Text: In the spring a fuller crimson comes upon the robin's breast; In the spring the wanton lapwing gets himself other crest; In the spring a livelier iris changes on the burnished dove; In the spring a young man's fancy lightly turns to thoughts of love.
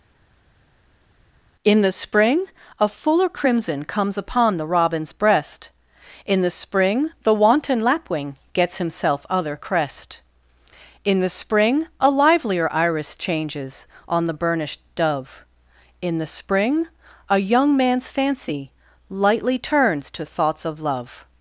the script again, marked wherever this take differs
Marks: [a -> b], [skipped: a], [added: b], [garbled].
In the spring a fuller crimson comes upon the robin's breast; In the spring the wanton lapwing gets himself other crest; In the spring a livelier iris changes on the burnished dove; In the spring a young man's fancy lightly turns to thoughts of love.